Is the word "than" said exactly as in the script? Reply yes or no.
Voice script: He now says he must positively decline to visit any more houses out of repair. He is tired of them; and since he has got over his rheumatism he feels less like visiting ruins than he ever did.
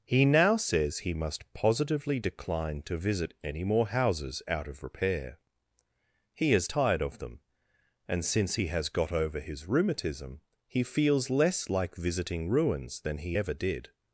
yes